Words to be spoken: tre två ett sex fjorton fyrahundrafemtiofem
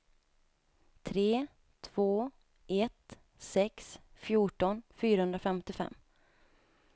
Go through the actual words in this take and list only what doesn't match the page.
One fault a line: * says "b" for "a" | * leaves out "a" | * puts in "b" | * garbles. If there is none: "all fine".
all fine